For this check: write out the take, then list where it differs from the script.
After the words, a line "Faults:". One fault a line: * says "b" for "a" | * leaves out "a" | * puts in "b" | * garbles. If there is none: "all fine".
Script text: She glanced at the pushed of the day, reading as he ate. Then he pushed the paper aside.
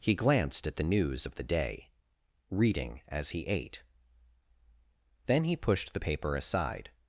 He glanced at the news of the day, reading as he ate. Then he pushed the paper aside.
Faults:
* says "He" for "She"
* says "news" for "pushed"